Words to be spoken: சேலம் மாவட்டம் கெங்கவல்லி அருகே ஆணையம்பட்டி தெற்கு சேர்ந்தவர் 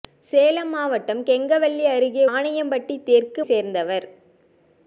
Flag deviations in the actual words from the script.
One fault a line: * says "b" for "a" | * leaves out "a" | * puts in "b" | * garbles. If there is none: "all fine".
all fine